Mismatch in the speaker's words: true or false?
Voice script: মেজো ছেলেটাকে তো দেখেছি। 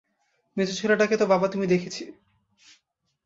true